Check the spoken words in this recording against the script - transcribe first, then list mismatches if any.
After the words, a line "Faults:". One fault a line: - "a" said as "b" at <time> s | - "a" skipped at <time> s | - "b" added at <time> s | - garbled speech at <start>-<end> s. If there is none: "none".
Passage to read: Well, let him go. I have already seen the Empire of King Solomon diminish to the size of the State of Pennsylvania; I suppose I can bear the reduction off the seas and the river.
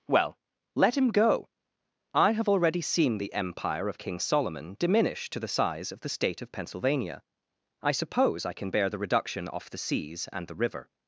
Well, let him go. I have already seen the Empire of King Solomon diminish to the size of the State of Pennsylvania; I suppose I can bear the reduction off the seas and the river.
Faults:
none